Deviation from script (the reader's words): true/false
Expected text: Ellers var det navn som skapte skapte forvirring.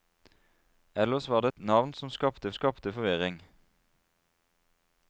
false